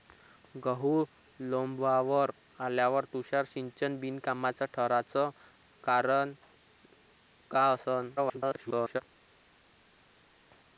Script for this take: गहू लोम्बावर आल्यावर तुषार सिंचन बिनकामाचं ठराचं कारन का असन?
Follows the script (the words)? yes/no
no